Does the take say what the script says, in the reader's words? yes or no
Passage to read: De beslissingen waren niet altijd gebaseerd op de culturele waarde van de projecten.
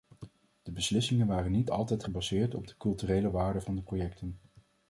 yes